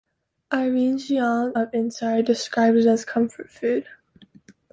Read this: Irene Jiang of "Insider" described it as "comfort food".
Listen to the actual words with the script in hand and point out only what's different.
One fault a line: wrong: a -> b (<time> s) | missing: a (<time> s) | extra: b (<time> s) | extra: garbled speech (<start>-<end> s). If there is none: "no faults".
no faults